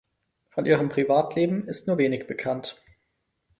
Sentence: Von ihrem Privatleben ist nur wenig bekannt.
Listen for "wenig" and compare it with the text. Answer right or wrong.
right